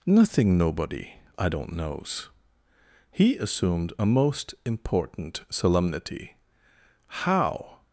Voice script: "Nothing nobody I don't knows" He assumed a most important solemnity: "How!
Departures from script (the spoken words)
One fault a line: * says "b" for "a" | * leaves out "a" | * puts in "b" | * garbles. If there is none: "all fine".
all fine